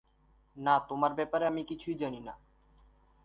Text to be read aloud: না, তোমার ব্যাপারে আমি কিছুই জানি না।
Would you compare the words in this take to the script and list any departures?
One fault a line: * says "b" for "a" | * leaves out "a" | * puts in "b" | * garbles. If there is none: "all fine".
all fine